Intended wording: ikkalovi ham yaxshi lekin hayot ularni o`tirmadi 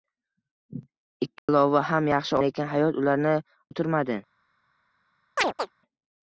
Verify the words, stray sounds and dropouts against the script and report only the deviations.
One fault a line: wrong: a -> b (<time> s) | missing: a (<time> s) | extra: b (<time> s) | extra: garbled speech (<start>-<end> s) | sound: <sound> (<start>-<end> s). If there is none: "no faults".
sound: dropout (1.4-1.5 s)
sound: chirp (5.4-5.7 s)